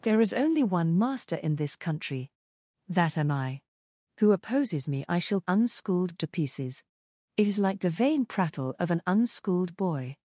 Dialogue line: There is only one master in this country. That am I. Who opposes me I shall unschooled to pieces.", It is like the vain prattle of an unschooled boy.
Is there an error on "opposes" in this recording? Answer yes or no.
no